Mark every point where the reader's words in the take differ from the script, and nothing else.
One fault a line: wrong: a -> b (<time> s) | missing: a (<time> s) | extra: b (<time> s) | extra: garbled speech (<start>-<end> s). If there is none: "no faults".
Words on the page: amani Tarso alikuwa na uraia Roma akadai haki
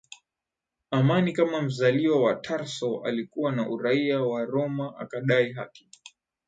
extra: Kama mzaliwa wa (1.3 s)
extra: wa (4.2 s)